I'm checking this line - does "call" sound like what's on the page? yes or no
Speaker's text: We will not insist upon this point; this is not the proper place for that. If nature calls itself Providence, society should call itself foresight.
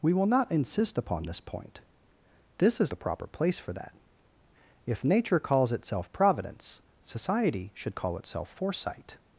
yes